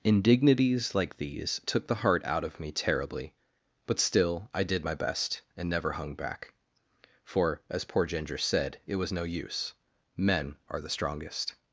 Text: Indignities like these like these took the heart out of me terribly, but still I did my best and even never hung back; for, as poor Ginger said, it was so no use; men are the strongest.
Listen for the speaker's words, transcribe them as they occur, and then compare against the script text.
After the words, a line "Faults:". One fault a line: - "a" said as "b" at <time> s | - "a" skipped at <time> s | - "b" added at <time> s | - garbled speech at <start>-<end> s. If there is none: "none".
Indignities like these took the heart out of me terribly, but still I did my best and never hung back; for, as poor Ginger said, it was no use; men are the strongest.
Faults:
- "like these" skipped at 1.6 s
- "even" skipped at 5.7 s
- "so" skipped at 9.1 s